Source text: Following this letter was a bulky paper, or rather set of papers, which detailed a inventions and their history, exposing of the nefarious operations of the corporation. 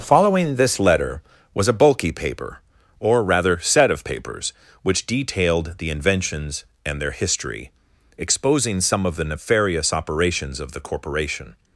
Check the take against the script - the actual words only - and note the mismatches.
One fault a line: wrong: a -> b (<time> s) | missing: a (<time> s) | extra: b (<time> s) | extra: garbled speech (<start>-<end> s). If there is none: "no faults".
wrong: a -> the (5.8 s)
extra: some (8.8 s)